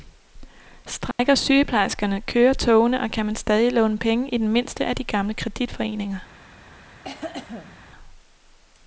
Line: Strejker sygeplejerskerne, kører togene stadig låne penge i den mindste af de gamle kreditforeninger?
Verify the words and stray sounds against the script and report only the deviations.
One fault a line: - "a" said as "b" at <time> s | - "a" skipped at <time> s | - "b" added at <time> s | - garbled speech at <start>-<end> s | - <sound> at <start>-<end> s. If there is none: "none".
- dropout at 1.1-1.2 s
- "og kan man" added at 3.0 s
- cough at 7.0-7.8 s